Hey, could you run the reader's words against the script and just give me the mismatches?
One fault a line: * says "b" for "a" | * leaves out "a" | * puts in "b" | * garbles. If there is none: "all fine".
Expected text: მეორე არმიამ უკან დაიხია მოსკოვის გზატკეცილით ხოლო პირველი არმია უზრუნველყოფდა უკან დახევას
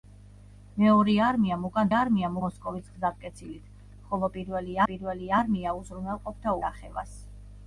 * says "არმიამ" for "დაიხია"
* puts in "პირველი"
* leaves out "უკან"